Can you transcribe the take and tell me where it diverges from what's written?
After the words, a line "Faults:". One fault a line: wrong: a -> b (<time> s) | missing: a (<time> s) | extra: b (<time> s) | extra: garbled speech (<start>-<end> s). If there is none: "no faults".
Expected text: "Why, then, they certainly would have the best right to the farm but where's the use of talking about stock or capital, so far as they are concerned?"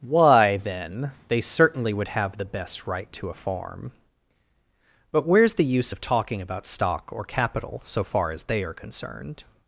"Why, then, they certainly would have the best right to a farm but where's the use of talking about stock or capital, so far as they are concerned?"
Faults:
wrong: the -> a (3.3 s)